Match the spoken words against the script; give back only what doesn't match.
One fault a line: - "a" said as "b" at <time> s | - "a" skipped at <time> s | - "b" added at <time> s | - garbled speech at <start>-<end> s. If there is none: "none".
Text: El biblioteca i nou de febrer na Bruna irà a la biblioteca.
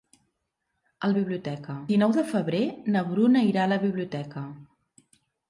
none